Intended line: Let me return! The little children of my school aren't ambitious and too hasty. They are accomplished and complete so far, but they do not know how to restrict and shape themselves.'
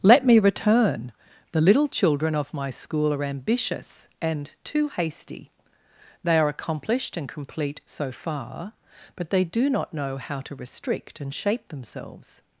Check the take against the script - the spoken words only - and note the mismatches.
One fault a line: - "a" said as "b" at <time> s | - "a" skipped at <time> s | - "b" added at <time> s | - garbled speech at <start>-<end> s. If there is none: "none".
- "aren't" said as "are" at 3.1 s